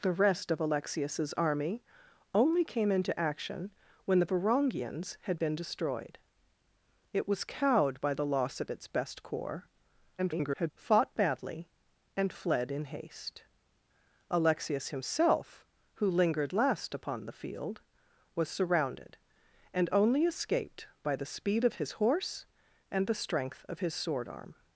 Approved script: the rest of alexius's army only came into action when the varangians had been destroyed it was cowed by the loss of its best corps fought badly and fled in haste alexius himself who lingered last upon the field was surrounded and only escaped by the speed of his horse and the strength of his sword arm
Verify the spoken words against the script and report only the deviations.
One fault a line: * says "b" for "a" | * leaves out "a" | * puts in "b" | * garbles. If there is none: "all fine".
* garbles